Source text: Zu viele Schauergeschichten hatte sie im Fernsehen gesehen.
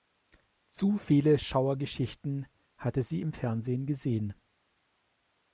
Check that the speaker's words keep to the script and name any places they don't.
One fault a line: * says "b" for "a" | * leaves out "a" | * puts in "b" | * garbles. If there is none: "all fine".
all fine